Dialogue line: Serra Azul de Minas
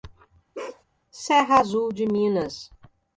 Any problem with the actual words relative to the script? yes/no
no